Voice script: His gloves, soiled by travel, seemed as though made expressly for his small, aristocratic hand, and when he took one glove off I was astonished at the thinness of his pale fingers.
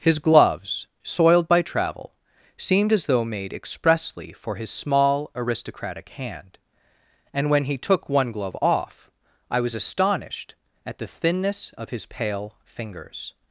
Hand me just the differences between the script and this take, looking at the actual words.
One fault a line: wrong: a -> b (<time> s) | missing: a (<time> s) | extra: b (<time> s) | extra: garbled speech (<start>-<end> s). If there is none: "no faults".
no faults